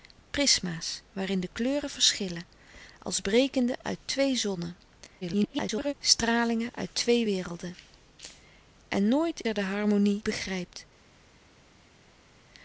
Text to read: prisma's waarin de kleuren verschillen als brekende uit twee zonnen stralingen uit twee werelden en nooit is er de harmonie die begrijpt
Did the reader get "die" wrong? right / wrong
wrong